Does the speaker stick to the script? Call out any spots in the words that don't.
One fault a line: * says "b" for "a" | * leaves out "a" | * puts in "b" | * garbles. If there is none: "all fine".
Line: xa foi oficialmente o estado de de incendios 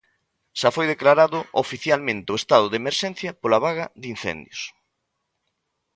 * puts in "declarado"
* puts in "emerxencia pola vaga"